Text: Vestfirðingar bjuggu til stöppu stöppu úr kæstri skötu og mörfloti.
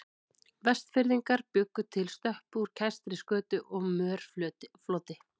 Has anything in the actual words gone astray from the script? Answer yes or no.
yes